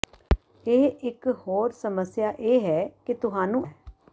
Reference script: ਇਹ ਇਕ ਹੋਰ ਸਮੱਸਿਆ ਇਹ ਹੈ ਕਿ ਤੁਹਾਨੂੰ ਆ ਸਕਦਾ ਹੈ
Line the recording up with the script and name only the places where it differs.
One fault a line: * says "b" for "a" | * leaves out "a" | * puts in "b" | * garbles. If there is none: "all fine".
* leaves out "ਆ ਸਕਦਾ"